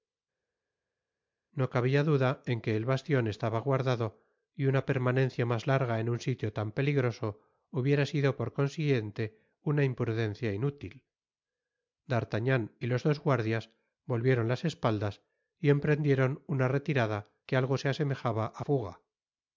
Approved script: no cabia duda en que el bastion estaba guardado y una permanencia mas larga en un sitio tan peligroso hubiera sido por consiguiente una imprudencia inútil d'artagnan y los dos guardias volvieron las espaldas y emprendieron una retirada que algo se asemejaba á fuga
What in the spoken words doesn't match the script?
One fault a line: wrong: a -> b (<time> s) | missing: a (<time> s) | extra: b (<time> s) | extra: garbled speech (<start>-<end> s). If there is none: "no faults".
no faults